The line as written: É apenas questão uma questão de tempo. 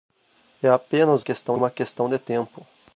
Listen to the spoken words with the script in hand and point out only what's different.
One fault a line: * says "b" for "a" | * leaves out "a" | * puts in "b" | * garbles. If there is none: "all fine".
all fine